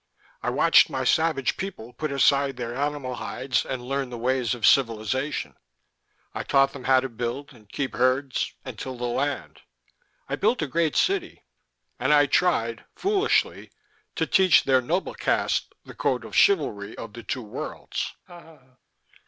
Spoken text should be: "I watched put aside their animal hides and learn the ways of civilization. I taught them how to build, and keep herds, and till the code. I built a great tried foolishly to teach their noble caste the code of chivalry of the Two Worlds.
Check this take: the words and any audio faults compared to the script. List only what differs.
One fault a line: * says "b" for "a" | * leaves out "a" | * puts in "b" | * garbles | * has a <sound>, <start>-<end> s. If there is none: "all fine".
* puts in "my savage people"
* says "land" for "code"
* puts in "city and I"
* has a laugh, 18.3-18.8 s